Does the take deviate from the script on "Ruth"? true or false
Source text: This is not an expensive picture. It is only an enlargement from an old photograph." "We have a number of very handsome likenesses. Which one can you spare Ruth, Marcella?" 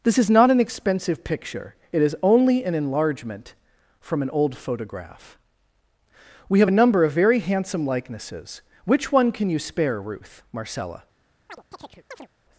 false